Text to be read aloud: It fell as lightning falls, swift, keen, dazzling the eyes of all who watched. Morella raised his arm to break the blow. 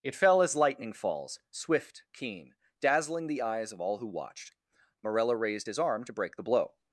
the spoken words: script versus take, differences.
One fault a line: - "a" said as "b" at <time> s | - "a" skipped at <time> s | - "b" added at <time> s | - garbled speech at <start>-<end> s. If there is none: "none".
none